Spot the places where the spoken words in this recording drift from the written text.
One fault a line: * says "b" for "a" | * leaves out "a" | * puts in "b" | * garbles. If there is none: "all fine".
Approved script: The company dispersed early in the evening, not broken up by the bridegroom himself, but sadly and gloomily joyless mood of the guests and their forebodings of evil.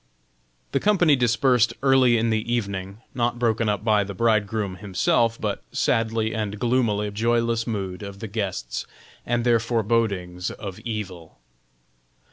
all fine